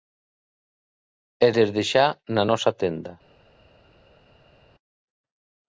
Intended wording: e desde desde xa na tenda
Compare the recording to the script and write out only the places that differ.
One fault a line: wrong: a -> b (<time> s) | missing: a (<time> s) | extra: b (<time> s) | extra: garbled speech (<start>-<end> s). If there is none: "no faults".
missing: desde (1.8 s)
extra: nosa (2.5 s)